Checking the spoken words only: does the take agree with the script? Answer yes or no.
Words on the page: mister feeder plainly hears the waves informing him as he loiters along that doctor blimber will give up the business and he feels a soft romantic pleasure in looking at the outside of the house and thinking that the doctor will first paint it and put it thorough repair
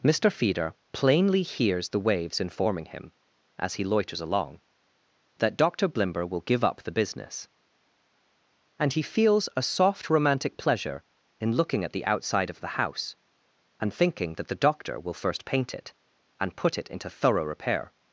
no